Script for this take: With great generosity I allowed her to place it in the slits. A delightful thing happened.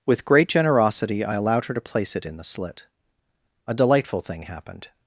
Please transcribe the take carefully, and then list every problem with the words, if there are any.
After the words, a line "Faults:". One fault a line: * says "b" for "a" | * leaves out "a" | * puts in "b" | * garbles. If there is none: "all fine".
With great generosity I allowed her to place it in the slit. A delightful thing happened.
Faults:
* says "slit" for "slits"